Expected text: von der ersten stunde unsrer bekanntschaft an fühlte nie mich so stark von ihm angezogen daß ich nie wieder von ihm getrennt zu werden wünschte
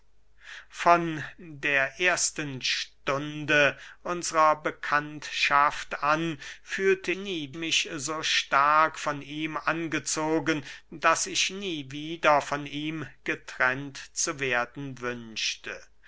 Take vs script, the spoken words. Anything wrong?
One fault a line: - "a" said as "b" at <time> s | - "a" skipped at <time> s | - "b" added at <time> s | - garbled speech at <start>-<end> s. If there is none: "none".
none